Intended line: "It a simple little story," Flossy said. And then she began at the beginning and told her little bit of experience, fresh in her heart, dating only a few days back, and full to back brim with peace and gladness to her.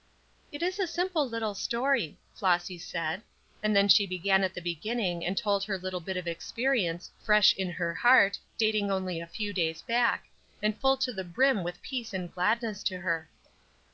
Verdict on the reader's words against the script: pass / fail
fail